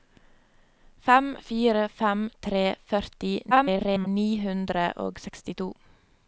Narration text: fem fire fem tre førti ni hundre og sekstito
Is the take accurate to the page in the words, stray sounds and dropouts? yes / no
no